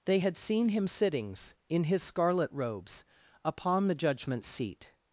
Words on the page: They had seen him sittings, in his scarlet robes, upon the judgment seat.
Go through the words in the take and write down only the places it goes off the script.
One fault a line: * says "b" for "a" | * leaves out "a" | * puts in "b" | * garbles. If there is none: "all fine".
all fine